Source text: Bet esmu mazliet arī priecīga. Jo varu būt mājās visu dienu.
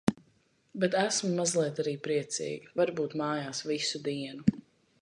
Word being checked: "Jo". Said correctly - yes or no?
no